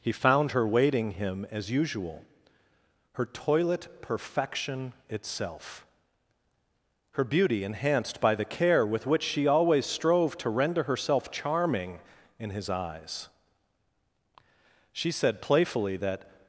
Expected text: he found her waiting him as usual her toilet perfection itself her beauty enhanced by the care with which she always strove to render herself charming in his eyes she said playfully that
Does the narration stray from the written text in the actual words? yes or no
no